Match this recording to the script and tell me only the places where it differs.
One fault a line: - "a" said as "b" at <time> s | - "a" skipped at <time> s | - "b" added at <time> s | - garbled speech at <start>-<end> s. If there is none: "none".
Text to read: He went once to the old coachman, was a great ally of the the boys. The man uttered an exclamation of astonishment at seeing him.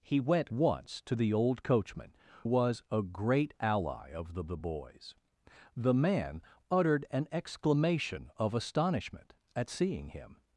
none